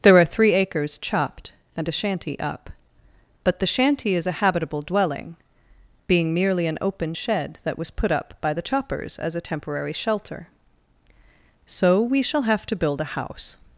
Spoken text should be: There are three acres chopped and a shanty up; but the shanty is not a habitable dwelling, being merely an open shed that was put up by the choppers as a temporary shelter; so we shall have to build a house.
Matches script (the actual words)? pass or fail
fail